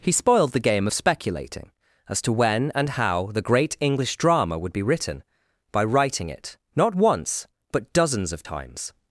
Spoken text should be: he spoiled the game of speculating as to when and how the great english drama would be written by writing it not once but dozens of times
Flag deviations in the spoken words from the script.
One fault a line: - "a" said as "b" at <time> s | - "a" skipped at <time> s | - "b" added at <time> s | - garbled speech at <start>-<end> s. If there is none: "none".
none